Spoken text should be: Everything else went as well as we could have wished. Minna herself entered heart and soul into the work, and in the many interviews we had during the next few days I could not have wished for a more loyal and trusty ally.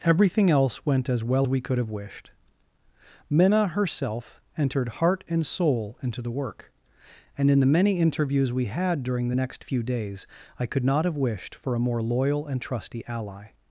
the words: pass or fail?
fail